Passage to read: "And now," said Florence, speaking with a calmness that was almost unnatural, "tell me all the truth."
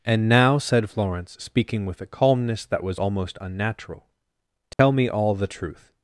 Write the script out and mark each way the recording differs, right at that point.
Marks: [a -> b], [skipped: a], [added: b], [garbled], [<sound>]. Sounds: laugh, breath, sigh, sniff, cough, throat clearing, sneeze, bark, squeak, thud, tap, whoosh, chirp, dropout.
"And now," said Florence, speaking with a calmness that was almost unnatural, "tell [dropout] me all the truth."